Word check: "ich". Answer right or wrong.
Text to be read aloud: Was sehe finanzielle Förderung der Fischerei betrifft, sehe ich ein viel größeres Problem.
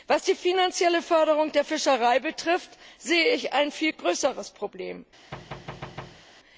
right